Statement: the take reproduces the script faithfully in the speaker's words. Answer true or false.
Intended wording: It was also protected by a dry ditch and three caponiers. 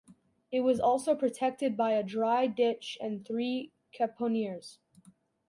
true